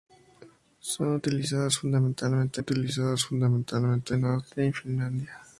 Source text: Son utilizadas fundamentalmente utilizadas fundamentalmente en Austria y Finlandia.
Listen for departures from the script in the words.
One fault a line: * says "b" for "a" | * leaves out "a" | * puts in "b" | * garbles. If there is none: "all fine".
all fine